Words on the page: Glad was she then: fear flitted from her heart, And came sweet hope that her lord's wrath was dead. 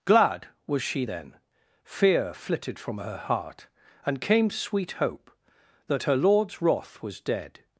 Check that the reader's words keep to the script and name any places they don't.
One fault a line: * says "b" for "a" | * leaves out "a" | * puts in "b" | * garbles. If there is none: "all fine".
all fine